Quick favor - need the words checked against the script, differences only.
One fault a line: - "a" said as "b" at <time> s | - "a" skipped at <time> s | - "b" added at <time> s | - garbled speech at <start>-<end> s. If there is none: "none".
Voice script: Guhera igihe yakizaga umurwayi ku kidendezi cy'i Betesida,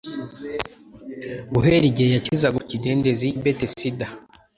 - "umurwayi" skipped at 2.6 s
- "cy'i" skipped at 3.3 s